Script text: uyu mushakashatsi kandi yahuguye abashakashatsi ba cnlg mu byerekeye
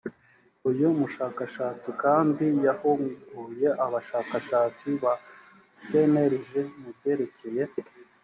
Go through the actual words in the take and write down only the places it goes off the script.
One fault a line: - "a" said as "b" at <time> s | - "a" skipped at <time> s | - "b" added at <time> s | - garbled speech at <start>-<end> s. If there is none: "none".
none